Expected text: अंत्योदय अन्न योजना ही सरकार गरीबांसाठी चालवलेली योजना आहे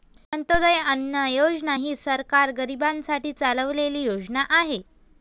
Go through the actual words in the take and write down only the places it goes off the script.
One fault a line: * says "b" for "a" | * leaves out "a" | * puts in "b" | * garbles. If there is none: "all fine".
all fine